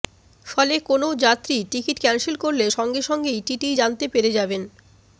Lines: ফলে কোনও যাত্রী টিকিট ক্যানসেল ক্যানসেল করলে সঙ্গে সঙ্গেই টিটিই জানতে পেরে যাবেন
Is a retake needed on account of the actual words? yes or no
yes